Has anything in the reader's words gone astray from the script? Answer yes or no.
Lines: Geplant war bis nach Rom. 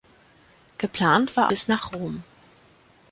no